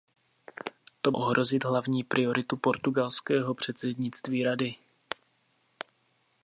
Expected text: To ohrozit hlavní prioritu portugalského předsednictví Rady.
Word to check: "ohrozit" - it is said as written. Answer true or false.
true